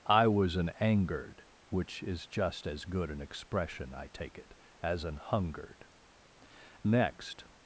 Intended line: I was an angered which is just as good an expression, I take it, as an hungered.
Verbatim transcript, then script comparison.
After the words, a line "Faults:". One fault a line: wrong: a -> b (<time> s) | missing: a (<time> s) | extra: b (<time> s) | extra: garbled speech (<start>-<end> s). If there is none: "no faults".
I was an angered which is just as good an expression, I take it, as an hungered. Next
Faults:
extra: Next (6.8 s)